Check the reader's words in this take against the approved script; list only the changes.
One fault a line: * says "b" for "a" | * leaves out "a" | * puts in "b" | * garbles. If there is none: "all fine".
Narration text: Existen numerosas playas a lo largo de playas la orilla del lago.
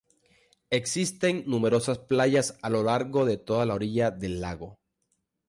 * says "toda" for "playas"